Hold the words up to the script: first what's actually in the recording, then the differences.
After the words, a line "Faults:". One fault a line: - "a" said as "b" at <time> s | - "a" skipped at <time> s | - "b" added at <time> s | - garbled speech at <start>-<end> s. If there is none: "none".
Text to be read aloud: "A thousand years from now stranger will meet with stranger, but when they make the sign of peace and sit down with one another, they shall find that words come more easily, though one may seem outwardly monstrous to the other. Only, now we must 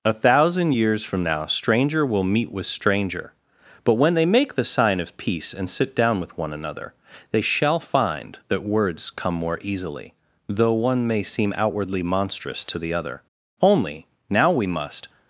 "A thousand years from now stranger will meet with stranger, but when they make the sign of peace and sit down with one another, they shall find that words come more easily, though one may seem outwardly monstrous to the other. Only, now we must
Faults:
none